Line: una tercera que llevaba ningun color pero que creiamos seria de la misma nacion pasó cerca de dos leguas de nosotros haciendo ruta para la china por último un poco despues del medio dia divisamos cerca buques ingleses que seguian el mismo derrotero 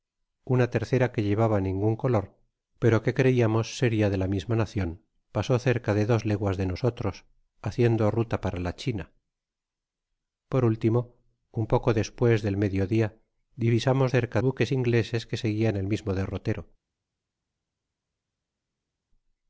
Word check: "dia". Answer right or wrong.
right